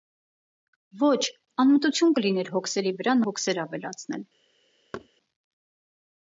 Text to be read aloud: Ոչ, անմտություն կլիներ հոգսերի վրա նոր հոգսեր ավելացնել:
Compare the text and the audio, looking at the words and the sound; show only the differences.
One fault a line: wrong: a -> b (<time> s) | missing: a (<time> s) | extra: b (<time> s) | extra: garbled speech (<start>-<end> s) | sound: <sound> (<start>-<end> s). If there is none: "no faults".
missing: նոր (3.2 s)
sound: thud (4.9-5.1 s)